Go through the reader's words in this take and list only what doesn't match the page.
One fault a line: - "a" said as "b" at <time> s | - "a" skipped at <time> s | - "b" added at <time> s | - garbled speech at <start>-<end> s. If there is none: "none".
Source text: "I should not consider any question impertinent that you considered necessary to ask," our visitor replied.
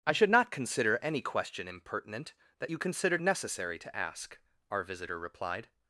none